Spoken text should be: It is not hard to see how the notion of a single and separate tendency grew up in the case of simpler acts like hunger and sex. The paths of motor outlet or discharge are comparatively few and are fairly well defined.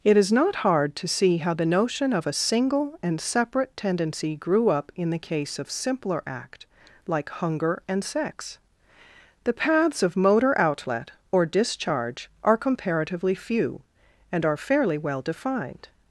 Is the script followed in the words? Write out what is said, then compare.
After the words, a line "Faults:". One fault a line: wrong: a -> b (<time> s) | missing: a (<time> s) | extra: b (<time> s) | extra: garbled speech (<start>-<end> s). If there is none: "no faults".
It is not hard to see how the notion of a single and separate tendency grew up in the case of simpler act like hunger and sex. The paths of motor outlet or discharge are comparatively few and are fairly well defined.
Faults:
wrong: acts -> act (6.2 s)